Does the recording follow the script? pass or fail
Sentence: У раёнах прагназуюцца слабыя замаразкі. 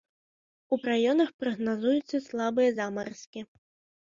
pass